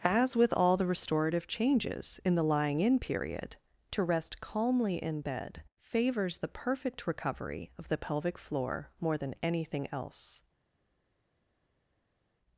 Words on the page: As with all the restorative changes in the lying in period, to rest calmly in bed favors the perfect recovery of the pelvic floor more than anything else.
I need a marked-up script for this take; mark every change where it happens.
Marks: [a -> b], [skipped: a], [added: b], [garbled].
As with all the restorative changes in the lying in period, to rest calmly in bed favors the perfect recovery of the pelvic floor more than anything else.